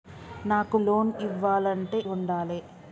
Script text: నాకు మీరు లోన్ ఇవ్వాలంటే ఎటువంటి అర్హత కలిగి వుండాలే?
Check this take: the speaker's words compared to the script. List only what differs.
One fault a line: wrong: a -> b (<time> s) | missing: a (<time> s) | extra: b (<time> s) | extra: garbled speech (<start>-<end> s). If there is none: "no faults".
missing: మీరు (0.8 s)
missing: ఎటువంటి అర్హత కలిగి (2.0 s)